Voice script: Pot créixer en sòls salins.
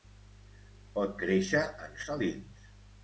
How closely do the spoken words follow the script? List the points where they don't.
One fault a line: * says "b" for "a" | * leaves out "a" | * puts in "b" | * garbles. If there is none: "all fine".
* leaves out "sòls"